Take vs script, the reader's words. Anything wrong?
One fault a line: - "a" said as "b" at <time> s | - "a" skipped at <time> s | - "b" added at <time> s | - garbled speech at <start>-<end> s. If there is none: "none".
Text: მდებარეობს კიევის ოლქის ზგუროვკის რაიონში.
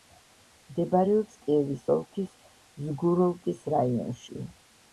none